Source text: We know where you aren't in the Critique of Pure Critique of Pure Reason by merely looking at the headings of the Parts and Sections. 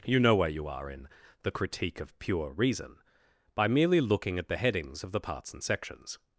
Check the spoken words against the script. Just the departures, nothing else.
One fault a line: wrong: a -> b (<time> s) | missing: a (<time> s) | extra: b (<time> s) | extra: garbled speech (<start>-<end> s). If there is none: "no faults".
wrong: We -> You (0.0 s)
wrong: aren't -> are (0.7 s)
missing: Critique of Pure (2.5 s)